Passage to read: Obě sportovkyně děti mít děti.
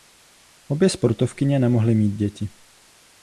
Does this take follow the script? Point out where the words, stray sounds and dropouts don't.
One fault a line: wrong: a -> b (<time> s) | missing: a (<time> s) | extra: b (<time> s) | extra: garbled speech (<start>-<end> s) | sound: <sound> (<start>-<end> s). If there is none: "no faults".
wrong: děti -> nemohly (1.6 s)